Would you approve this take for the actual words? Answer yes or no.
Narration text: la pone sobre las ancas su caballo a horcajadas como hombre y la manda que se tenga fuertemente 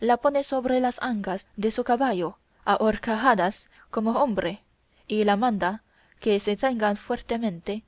no